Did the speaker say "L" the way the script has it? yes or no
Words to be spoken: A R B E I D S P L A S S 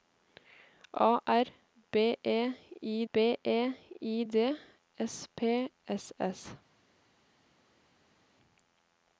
no